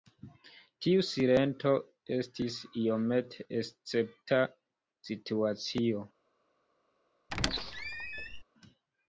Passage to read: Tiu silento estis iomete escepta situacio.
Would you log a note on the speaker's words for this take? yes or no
no